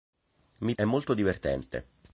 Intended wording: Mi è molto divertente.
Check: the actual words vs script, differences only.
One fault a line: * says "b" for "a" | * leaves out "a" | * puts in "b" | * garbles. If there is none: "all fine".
all fine